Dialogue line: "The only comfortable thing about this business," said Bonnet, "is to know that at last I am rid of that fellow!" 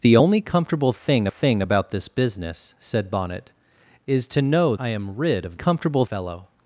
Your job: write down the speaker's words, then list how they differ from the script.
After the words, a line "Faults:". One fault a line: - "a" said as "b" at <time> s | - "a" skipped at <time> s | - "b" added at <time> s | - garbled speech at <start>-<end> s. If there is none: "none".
"The only comfortable thing thing about this business," said Bonnet, "is to know I am rid of comfortable fellow!"
Faults:
- "thing" added at 1.3 s
- "that at last" skipped at 4.7 s
- "that" said as "comfortable" at 5.5 s